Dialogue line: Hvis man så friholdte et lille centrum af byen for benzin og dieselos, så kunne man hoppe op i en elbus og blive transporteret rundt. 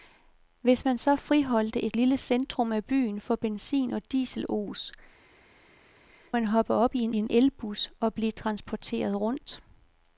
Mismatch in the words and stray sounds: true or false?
true